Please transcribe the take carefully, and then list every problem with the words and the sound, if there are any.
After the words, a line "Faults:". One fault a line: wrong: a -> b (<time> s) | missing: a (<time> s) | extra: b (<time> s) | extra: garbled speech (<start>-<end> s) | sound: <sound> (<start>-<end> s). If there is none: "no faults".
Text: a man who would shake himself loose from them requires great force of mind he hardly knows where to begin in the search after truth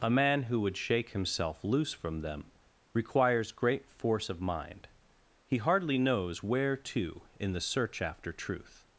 a man who would shake himself loose from them requires great force of mind he hardly knows where to in the search after truth
Faults:
missing: begin (7.2 s)